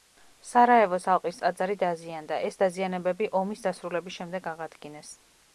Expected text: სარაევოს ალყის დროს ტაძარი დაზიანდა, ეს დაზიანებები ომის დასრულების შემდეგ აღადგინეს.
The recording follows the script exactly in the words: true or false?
false